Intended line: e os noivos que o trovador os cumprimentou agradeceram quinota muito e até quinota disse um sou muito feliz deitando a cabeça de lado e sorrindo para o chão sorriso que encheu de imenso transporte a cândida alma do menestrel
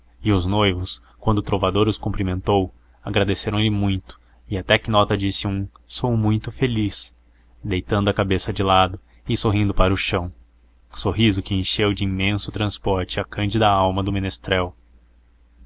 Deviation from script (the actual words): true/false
true